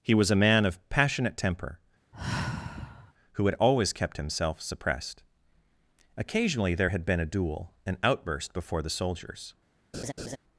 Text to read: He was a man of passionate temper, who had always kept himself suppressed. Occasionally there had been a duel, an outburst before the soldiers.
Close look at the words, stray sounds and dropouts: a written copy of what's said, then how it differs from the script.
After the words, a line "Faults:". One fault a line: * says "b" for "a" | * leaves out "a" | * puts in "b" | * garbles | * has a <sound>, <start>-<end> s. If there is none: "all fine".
He was a man of passionate temper, who had always kept himself suppressed. Occasionally there had been a duel, an outburst before the soldiers.
Faults:
* has a sigh, 2.1-3.1 s
* has a laugh, 9.9-10.4 s